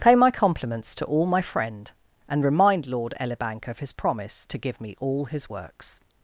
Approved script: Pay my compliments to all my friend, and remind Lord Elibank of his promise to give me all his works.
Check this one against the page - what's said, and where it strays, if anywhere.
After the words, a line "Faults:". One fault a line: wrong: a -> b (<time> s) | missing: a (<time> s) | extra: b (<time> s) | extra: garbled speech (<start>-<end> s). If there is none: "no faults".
Pay my compliments to all my friend, and remind Lord Elibank of his promise to give me all his works.
Faults:
no faults